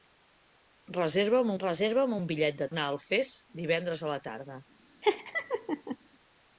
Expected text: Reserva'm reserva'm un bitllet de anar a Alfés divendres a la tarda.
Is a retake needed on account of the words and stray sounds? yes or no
yes